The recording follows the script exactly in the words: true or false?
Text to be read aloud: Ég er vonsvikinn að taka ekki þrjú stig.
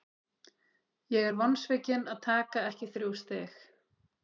true